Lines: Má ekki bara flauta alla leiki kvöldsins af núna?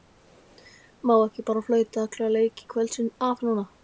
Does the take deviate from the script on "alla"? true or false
false